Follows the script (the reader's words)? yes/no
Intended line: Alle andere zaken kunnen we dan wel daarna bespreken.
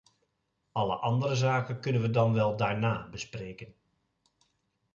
yes